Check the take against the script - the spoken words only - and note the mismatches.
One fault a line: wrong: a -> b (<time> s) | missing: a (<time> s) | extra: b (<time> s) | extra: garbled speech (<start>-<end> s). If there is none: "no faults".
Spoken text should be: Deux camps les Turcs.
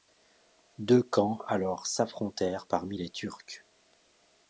extra: alors s'affrontèrent parmi (1.4 s)